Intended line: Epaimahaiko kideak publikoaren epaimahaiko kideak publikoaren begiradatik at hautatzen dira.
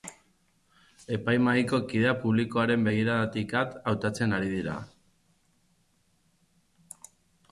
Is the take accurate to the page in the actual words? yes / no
no